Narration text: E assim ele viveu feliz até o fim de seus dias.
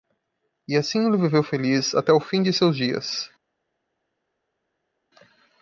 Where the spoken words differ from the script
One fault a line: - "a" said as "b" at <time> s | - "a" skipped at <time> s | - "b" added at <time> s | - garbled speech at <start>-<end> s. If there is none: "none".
none